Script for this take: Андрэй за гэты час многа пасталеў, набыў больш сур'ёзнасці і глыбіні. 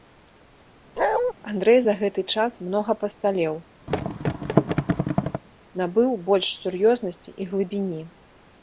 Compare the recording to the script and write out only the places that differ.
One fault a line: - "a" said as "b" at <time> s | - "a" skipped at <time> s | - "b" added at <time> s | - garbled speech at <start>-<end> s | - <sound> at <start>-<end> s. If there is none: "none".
- bark at 1.0-1.3 s
- thud at 3.9-5.4 s